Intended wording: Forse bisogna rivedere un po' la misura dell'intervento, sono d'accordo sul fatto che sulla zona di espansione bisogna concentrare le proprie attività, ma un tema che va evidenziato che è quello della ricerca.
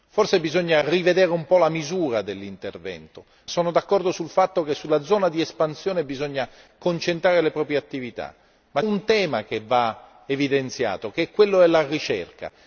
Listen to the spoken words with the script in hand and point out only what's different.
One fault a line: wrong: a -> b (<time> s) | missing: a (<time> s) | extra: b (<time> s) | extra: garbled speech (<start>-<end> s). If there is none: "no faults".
no faults